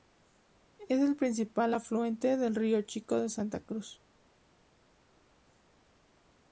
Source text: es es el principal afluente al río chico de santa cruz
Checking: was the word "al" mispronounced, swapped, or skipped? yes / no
yes